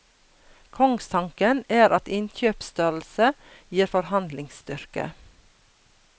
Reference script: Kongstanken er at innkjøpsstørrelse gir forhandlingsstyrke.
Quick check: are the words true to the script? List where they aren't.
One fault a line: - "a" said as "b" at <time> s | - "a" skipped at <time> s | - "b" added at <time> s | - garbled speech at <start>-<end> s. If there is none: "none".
none